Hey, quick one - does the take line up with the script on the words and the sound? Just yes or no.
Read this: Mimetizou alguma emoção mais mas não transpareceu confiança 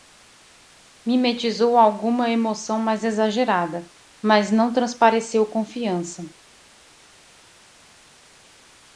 no